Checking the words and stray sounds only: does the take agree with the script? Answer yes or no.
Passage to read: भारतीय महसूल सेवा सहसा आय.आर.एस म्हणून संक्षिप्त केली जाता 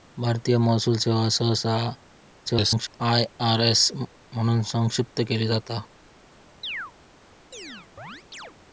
no